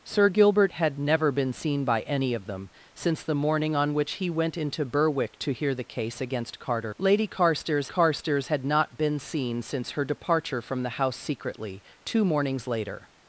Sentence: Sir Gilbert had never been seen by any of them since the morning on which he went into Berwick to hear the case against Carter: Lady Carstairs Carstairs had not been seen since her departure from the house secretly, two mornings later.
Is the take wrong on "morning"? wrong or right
right